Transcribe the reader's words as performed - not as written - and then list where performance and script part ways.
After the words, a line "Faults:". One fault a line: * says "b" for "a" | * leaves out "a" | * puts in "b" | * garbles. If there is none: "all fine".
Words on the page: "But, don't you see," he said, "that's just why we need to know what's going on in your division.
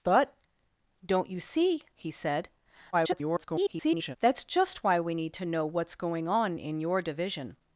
"But, don't you see," he said, [garbled] "that's just why we need to know what's going on in your division.
Faults:
* garbles